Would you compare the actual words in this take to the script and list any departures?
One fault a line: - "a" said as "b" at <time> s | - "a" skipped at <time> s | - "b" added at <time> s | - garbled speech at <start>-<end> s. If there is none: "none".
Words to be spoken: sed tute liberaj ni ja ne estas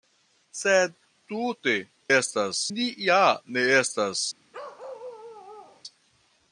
- "liberaj" said as "estas" at 2.2 s